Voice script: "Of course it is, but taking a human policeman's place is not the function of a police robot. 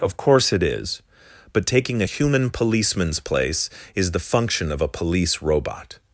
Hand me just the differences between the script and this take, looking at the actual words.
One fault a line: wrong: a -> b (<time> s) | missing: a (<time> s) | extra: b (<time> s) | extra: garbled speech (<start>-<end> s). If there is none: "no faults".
missing: not (4.1 s)